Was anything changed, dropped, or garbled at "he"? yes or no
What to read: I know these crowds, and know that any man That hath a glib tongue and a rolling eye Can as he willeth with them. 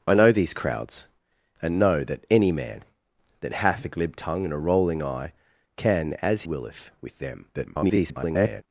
yes